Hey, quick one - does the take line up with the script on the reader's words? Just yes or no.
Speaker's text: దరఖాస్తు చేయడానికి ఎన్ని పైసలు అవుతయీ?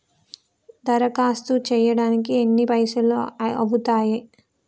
yes